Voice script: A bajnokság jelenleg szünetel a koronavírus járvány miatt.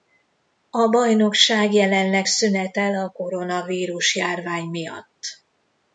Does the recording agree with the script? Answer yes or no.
yes